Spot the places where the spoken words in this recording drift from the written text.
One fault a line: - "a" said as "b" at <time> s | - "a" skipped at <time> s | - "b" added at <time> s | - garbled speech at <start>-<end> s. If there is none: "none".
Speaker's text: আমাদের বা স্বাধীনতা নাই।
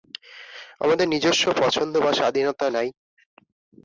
- "নিজস্ব পছন্দ" added at 1.1 s